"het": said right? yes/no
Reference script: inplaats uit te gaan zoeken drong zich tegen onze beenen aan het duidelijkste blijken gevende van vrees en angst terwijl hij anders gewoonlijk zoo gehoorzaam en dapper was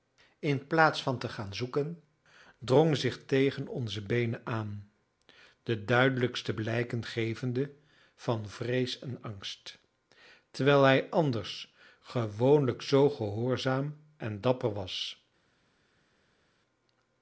no